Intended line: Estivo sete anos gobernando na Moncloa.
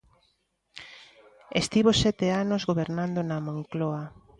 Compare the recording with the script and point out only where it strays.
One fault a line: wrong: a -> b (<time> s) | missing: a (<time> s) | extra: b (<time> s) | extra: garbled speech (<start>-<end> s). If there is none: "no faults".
no faults